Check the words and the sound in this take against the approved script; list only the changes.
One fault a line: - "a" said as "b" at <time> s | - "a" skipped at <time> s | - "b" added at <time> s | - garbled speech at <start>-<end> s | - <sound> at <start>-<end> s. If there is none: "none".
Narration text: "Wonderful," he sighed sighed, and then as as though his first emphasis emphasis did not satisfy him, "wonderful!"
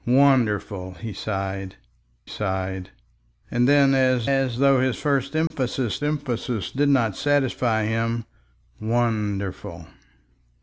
- dropout at 5.5-5.5 s